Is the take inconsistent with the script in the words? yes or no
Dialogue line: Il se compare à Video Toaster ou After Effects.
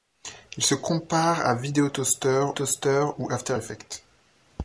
yes